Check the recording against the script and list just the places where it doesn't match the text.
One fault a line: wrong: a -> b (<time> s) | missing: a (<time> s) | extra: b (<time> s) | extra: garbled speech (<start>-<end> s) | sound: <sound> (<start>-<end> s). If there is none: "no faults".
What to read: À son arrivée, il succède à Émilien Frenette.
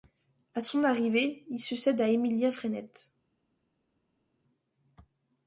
no faults